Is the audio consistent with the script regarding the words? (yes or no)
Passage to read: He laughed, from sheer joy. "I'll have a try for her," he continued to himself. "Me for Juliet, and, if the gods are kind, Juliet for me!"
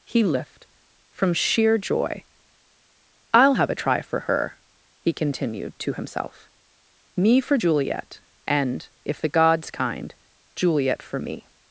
no